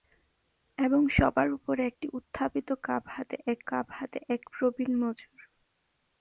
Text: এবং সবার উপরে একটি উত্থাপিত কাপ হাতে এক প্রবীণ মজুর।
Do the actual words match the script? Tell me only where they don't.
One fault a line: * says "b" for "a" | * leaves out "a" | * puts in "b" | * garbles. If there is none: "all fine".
* puts in "কাপ হাতে এক"